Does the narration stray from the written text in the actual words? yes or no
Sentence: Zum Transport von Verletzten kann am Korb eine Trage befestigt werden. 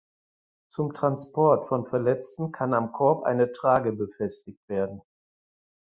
no